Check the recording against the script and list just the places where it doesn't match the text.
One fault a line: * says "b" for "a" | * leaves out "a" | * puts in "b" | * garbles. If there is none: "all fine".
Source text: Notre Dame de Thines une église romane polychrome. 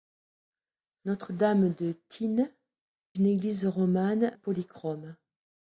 all fine